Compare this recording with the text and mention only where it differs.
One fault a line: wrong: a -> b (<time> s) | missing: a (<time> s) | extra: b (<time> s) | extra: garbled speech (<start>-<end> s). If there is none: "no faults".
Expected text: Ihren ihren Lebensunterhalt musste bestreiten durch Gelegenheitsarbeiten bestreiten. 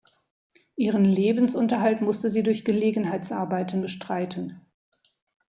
missing: ihren (1.1 s)
wrong: bestreiten -> sie (2.3 s)